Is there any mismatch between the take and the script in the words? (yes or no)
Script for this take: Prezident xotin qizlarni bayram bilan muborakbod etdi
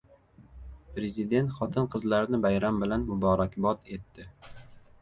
no